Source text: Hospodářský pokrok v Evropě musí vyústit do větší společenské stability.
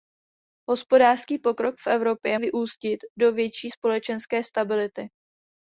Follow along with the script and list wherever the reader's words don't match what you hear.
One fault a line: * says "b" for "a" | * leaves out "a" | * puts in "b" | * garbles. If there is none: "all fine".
* leaves out "musí"